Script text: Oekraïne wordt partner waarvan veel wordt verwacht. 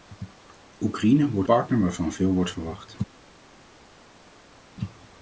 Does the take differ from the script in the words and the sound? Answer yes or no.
no